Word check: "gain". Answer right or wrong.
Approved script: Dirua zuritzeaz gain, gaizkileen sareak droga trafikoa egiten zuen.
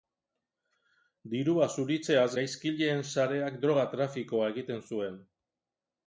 wrong